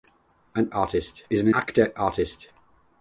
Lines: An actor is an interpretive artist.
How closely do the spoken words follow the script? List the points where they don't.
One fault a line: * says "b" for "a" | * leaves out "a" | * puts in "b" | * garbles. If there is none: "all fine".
* says "artist" for "actor"
* says "actor" for "interpretive"